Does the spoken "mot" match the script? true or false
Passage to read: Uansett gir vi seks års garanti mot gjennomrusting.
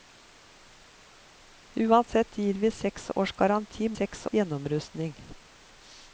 false